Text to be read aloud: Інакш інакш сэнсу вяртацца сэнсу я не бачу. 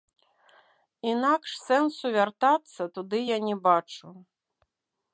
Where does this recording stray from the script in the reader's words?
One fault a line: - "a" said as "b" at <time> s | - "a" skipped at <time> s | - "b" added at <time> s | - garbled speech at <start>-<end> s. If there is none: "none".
- "інакш" skipped at 1.5 s
- "сэнсу" said as "туды" at 3.0 s